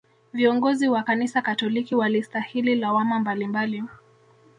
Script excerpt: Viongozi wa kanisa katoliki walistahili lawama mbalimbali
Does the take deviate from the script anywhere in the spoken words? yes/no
no